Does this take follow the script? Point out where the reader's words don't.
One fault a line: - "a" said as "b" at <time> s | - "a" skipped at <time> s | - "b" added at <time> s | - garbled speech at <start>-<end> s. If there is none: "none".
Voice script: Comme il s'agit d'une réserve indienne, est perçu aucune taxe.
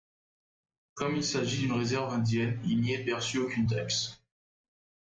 - "il n'y" added at 2.6 s